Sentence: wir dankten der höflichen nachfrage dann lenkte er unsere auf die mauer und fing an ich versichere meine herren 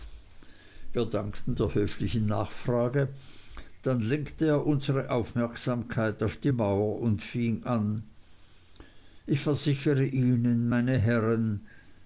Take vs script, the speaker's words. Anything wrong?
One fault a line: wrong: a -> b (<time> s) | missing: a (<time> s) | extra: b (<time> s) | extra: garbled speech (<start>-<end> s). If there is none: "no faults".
extra: aufmerksamkeit (5.1 s)
extra: ihnen (10.0 s)